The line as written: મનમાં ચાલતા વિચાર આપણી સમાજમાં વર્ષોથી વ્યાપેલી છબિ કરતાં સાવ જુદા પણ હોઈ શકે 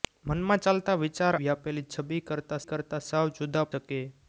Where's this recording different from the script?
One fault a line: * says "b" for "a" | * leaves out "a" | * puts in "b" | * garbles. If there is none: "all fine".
* leaves out "આપણી સમાજમાં વર્ષોથી"
* puts in "કરતાં"
* leaves out "પણ હોઈ"